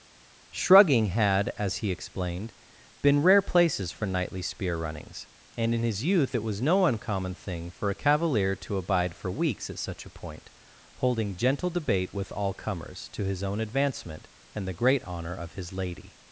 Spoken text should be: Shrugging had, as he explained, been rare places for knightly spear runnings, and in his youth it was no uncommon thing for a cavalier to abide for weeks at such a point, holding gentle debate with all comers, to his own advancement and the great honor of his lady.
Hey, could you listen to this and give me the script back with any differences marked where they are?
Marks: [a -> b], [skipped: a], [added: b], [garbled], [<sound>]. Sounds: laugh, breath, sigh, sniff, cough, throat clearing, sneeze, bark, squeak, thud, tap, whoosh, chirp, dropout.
Shrugging had, as he explained, been rare places for knightly spear runnings, and in his youth it was no uncommon thing for a cavalier to abide for weeks at such a point, holding gentle debate with all comers, to his own advancement and the great honor of his lady.